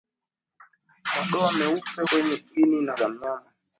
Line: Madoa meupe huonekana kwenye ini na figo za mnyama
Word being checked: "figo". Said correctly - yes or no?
no